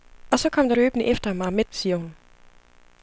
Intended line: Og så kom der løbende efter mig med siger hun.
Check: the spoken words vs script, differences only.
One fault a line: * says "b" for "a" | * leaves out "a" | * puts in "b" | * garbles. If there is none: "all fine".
all fine